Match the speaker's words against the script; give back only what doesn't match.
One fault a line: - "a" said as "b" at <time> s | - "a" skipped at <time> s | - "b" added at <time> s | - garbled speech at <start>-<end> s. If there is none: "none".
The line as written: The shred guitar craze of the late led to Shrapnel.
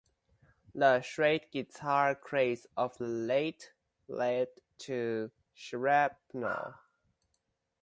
none